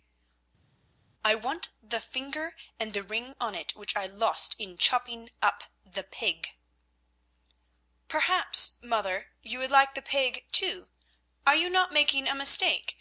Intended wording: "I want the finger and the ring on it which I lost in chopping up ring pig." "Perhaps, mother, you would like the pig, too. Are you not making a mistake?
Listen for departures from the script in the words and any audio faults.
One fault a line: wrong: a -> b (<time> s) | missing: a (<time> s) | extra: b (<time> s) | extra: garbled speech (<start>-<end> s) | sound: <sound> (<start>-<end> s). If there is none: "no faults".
wrong: ring -> the (5.8 s)